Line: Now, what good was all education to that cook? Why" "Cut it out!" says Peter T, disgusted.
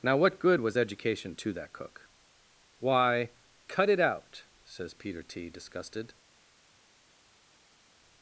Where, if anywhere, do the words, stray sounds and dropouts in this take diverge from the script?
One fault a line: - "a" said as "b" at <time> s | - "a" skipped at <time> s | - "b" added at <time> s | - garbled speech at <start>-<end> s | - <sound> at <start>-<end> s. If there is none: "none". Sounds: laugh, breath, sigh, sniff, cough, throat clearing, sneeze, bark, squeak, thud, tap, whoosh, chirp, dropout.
- "all" skipped at 0.8 s